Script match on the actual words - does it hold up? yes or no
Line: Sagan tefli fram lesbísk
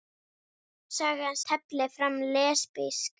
yes